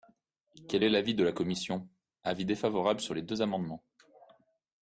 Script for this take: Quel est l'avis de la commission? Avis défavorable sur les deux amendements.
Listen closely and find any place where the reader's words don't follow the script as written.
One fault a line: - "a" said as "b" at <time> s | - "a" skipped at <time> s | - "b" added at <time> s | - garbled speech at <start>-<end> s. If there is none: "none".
none